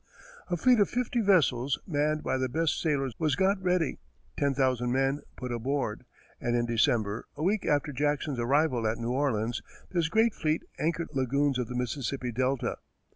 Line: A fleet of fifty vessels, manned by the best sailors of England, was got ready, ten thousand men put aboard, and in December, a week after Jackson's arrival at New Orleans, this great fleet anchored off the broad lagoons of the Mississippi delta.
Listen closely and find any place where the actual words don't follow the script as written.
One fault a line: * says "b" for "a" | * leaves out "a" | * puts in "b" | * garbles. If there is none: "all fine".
* leaves out "of England"
* leaves out "off the broad"